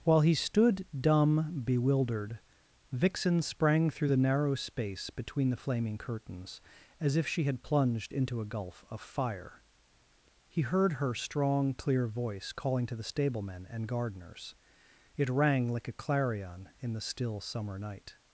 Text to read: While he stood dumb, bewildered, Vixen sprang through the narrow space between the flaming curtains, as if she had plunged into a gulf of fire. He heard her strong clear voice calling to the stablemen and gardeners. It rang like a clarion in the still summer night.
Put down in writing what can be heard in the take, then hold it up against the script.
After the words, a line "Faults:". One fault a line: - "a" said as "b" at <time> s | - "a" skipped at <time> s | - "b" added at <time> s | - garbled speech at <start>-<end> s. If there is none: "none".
While he stood dumb, bewildered, Vixen sprang through the narrow space between the flaming curtains, as if she had plunged into a gulf of fire. He heard her strong clear voice calling to the stablemen and gardeners. It rang like a clarion in the still summer night.
Faults:
none